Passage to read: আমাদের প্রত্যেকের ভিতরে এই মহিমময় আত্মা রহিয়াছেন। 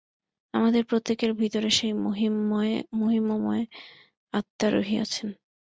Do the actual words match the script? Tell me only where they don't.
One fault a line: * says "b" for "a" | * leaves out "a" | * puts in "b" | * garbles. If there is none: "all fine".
* says "সেই" for "এই"